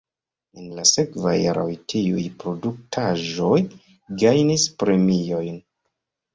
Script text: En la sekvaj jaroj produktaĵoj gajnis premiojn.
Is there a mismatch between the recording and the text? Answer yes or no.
yes